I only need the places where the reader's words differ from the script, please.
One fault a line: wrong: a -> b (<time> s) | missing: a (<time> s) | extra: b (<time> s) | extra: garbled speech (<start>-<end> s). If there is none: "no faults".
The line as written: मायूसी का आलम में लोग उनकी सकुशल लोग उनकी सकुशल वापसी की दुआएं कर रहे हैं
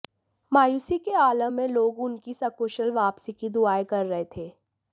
wrong: का -> के (1.0 s)
missing: लोग उनकी सकुशल (2.9 s)
wrong: हैं -> थे (4.4 s)